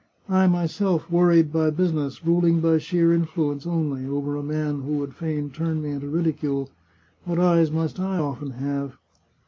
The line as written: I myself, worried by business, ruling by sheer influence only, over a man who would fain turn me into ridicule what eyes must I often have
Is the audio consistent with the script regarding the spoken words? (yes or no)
yes